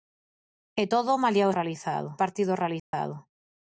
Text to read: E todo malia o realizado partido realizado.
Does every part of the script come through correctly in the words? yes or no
yes